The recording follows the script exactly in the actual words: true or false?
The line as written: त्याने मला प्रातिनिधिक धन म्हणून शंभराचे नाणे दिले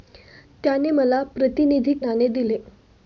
false